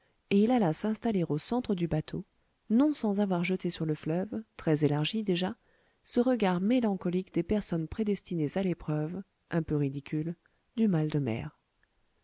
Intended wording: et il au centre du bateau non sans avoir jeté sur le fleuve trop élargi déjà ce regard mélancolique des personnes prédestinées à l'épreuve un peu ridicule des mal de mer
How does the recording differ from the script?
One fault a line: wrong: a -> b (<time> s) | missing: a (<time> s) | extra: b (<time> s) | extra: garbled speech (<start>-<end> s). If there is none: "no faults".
extra: alla s'installer (0.5 s)
wrong: trop -> très (4.6 s)
wrong: des -> du (10.8 s)